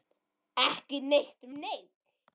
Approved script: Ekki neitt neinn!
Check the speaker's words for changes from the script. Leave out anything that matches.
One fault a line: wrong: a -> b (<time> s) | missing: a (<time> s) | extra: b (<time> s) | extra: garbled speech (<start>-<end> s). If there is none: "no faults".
no faults